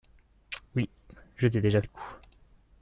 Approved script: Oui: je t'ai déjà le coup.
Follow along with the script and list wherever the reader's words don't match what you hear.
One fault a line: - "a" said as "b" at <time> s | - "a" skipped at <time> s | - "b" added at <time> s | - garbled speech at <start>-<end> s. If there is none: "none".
none